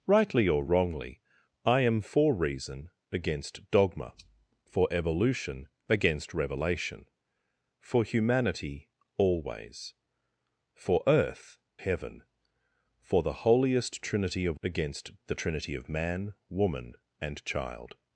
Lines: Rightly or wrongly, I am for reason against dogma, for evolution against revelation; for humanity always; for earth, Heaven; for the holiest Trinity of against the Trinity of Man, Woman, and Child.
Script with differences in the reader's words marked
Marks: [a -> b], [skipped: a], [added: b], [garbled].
Rightly or wrongly, I am for reason against dogma, for evolution against revelation; for humanity always; for earth, Heaven; for the holiest Trinity of against the Trinity of Man, Woman, and Child.